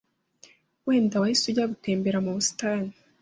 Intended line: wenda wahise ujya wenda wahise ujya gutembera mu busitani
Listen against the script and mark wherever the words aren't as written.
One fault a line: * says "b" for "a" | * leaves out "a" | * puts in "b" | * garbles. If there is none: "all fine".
* leaves out "wenda wahise ujya"